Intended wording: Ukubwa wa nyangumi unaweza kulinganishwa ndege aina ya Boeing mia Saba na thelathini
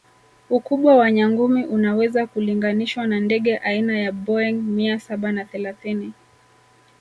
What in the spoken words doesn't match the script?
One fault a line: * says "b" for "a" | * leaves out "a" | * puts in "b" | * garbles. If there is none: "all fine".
* puts in "na"